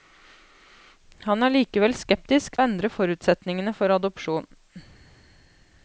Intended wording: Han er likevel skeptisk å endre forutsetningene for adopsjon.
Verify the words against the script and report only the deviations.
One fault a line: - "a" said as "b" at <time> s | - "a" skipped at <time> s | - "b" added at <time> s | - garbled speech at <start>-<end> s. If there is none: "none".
none